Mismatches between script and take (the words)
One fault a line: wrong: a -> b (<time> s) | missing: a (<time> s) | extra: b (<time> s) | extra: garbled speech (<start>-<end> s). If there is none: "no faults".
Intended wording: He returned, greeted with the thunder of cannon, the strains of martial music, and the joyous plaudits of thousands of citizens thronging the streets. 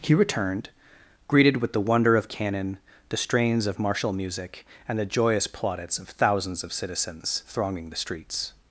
wrong: thunder -> wonder (1.8 s)